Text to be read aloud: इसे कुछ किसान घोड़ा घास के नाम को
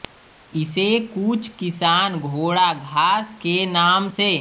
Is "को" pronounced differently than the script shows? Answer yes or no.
yes